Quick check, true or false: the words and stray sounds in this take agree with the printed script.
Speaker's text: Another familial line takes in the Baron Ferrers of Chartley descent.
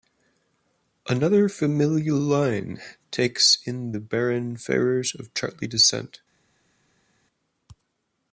true